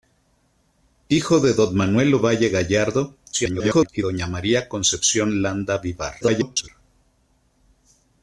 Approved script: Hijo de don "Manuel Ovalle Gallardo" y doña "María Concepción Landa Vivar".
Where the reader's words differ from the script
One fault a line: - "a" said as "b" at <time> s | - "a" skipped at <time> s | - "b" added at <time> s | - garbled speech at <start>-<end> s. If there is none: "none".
- garbled speech at 3.3-3.9 s
- garbled speech at 6.2-6.7 s